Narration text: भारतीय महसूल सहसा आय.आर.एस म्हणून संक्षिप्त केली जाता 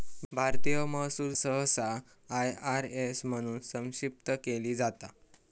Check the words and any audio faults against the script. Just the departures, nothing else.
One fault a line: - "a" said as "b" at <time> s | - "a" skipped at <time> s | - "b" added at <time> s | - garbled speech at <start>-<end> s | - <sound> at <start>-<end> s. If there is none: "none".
none